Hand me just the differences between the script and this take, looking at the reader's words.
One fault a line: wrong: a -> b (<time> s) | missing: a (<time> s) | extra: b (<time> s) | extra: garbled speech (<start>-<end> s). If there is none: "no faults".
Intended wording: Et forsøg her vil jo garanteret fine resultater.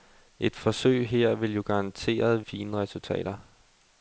no faults